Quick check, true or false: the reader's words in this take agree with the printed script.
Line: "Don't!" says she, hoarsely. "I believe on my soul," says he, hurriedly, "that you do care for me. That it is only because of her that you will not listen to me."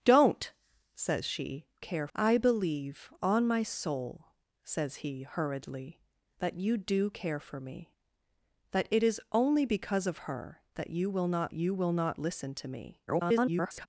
false